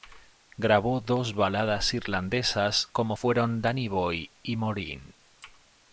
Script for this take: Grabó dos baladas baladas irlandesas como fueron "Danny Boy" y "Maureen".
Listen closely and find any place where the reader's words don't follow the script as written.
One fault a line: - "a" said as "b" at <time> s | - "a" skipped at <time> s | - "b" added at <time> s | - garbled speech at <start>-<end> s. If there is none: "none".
- "baladas" skipped at 1.9 s